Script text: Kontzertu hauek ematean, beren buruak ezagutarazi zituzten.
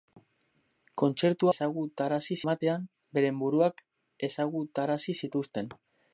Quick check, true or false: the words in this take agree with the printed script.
false